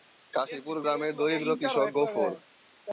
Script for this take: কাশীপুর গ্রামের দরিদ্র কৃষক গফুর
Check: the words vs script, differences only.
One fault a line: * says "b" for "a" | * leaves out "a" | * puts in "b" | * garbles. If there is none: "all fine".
all fine